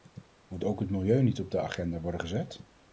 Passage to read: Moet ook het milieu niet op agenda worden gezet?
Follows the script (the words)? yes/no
no